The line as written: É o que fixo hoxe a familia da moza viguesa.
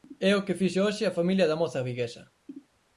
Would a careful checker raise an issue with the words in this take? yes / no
no